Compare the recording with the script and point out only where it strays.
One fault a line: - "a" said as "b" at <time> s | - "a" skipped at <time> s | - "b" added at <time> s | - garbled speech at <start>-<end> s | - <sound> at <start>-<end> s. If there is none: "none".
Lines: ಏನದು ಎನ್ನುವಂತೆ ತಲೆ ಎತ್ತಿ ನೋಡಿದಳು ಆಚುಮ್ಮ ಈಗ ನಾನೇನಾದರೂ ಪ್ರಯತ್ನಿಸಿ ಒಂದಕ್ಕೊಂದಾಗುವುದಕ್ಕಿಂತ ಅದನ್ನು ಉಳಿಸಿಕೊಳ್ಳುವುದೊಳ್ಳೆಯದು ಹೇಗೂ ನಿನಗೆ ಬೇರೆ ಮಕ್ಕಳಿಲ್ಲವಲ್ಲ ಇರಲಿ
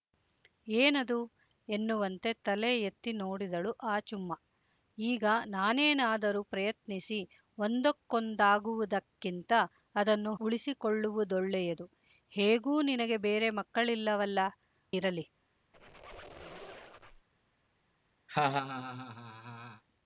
- squeak at 15.7-17.3 s
- laugh at 18.3-19.8 s